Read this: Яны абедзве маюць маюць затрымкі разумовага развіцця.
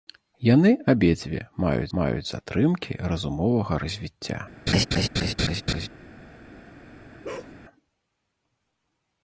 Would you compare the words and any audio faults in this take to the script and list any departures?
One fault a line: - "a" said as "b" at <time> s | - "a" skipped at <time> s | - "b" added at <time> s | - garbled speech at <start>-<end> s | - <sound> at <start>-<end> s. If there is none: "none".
- laugh at 4.7-5.9 s
- bark at 7.2-7.5 s